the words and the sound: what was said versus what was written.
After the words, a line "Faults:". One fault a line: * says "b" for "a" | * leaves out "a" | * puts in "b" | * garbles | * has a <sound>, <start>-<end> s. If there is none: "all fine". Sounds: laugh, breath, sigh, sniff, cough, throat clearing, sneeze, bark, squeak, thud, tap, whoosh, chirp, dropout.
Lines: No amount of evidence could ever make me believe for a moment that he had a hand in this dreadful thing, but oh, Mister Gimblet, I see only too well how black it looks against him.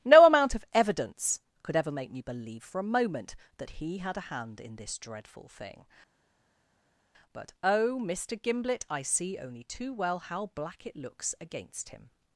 No amount of evidence could ever make me believe for a moment that he had a hand in this dreadful thing, but oh, Mister Gimblet, I see only too well how black it looks against him.
Faults:
all fine